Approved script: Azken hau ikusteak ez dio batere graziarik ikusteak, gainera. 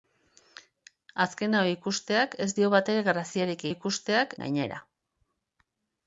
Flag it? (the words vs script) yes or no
no